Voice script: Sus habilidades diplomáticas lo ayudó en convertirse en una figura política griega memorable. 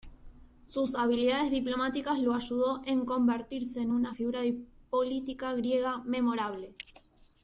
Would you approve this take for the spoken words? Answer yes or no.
yes